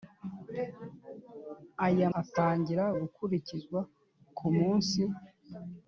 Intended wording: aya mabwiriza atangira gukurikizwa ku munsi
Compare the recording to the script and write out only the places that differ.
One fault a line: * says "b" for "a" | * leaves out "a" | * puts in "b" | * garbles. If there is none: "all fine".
* leaves out "mabwiriza"